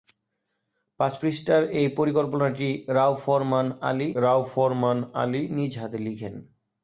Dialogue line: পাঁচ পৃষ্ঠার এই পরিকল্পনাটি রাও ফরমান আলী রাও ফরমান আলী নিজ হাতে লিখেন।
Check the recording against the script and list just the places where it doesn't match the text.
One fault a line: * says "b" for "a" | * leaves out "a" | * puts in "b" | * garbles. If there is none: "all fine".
all fine